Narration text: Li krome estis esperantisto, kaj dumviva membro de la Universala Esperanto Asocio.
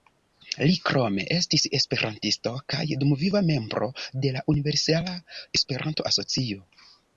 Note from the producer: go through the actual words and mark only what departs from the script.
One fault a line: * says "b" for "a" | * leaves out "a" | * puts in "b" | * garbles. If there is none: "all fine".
all fine